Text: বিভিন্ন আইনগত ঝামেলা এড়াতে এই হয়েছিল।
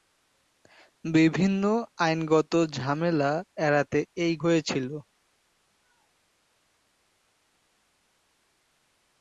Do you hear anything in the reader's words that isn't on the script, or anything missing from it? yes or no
no